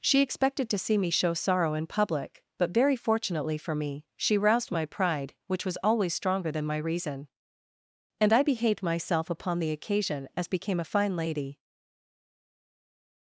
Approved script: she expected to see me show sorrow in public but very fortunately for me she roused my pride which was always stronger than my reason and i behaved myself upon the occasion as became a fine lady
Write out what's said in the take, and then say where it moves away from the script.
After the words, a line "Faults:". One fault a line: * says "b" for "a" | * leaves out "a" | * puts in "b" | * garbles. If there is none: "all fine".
she expected to see me show sorrow in public but very fortunately for me she roused my pride which was always stronger than my reason and i behaved myself upon the occasion as became a fine lady
Faults:
all fine